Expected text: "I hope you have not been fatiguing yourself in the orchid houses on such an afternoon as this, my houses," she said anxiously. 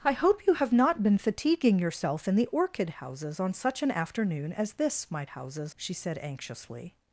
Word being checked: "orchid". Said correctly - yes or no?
yes